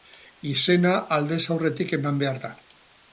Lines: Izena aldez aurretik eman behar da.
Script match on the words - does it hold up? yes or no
yes